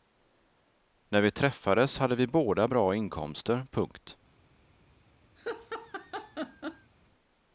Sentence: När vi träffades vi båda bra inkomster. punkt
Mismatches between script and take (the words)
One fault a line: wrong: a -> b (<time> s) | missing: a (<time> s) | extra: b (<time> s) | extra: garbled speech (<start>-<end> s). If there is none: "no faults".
extra: hade (2.0 s)